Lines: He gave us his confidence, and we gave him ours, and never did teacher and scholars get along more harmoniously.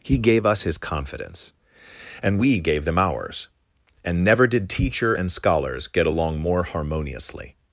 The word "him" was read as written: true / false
false